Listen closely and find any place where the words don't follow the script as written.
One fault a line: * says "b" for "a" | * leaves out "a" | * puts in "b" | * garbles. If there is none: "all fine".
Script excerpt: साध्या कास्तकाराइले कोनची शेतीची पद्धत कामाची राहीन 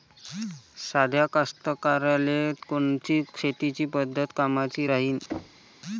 all fine